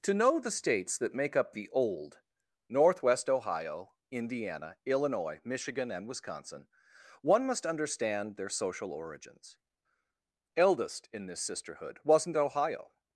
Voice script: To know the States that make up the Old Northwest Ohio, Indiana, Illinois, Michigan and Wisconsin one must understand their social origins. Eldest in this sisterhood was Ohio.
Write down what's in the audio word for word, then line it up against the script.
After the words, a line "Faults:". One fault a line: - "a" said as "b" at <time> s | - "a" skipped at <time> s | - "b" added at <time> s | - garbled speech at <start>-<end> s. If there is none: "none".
To know the States that make up the Old Northwest Ohio, Indiana, Illinois, Michigan and Wisconsin one must understand their social origins. Eldest in this sisterhood wasn't Ohio.
Faults:
- "was" said as "wasn't" at 12.0 s